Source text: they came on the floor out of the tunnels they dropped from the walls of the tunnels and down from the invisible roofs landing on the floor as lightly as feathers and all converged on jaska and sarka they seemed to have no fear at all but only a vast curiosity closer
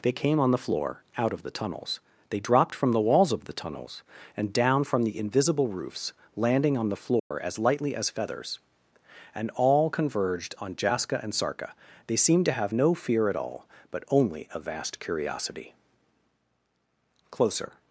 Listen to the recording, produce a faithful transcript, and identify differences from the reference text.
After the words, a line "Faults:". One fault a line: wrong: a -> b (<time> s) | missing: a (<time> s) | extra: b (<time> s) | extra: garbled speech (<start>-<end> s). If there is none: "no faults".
they came on the floor out of the tunnels they dropped from the walls of the tunnels and down from the invisible roofs landing on the floor as lightly as feathers and all converged on jaska and sarka they seemed to have no fear at all but only a vast curiosity closer
Faults:
no faults